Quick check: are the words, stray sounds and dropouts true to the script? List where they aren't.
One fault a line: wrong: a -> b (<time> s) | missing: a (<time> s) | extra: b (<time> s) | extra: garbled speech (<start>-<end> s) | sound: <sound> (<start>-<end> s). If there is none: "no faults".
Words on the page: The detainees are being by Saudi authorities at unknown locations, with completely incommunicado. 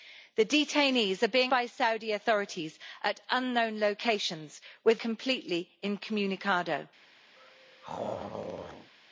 sound: throat clearing (7.4-8.9 s)